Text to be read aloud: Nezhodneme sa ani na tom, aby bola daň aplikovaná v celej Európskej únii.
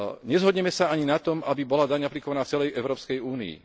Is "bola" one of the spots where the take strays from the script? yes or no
no